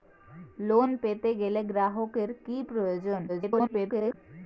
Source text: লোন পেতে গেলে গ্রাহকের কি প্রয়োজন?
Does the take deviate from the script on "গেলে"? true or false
false